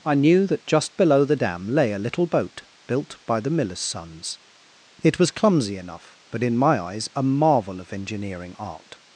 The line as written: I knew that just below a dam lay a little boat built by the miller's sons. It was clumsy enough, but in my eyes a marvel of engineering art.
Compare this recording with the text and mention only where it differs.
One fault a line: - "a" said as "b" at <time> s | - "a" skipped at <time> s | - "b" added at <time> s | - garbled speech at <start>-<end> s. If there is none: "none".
- "a" said as "the" at 1.2 s